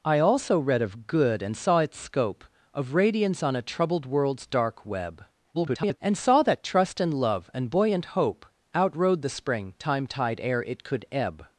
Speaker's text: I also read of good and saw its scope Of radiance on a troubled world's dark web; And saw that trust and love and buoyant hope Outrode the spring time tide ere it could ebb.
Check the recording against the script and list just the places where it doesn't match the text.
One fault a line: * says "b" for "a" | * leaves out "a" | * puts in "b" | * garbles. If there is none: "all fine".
* garbles